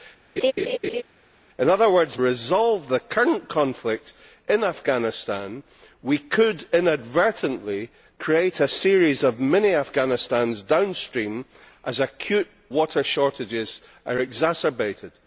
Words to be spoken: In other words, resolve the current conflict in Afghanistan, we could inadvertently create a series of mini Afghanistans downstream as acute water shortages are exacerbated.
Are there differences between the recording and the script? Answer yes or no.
no